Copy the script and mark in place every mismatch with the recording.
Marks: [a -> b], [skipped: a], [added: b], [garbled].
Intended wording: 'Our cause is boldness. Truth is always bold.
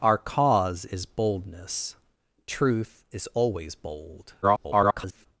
'Our cause is boldness. Truth is always bold. [garbled]